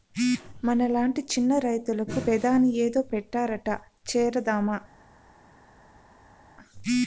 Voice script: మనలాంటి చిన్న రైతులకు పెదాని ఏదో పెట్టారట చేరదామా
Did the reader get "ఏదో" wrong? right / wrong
right